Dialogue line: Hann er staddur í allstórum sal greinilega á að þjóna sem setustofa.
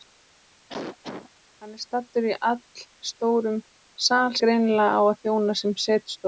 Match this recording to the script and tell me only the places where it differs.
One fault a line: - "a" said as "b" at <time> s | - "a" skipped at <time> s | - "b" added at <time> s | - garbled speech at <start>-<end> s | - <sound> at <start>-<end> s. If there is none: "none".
- cough at 0.7-1.3 s